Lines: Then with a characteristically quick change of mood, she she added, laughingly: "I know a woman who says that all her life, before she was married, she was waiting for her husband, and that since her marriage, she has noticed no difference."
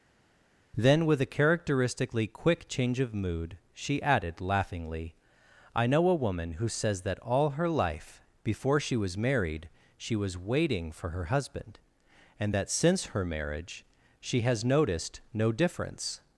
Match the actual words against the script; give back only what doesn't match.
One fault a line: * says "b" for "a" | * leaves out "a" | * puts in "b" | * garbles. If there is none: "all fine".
* leaves out "she"